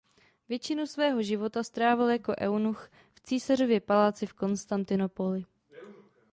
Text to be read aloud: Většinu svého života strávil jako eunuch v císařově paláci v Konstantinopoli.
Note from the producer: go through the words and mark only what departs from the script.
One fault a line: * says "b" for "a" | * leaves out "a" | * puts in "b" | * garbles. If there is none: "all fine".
all fine